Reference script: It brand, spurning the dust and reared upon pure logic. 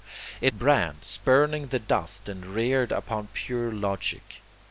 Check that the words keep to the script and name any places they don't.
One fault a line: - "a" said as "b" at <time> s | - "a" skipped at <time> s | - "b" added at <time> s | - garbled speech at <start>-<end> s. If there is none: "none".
none